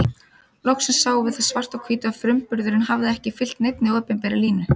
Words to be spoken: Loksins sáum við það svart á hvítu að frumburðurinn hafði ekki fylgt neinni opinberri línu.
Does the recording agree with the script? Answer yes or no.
yes